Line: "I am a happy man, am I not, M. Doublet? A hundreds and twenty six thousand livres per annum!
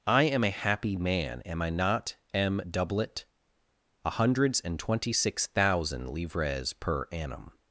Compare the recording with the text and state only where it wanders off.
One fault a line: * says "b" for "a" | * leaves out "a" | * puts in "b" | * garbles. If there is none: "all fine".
all fine